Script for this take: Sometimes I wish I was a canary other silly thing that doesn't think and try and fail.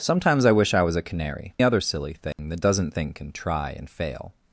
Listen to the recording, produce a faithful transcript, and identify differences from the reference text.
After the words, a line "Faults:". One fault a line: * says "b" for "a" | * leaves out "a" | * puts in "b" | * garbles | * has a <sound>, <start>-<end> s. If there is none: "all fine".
Sometimes I wish I was a canary other silly thing that doesn't think and try and fail.
Faults:
* has a dropout, 2.3-2.4 s